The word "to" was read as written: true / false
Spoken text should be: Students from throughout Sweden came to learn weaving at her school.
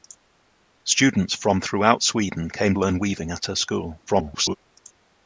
false